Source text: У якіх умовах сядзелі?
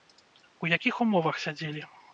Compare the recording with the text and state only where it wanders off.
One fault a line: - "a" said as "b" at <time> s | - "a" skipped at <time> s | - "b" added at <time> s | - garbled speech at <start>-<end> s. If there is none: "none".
none